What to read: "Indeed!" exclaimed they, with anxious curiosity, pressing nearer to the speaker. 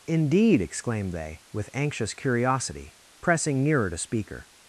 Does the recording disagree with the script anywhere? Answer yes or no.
yes